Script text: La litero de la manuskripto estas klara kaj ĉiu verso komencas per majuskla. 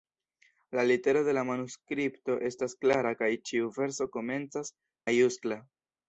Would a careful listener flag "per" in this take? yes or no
yes